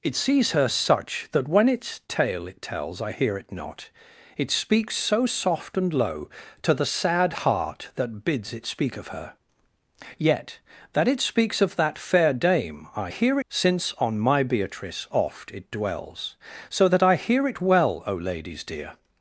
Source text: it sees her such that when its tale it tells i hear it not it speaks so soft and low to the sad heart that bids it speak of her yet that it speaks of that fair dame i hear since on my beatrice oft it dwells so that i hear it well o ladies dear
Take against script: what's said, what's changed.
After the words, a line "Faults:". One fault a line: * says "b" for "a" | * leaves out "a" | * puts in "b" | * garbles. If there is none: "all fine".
it sees her such that when its tale it tells i hear it not it speaks so soft and low to the sad heart that bids it speak of her yet that it speaks of that fair dame i hear since on my beatrice oft it dwells so that i hear it well o ladies dear
Faults:
all fine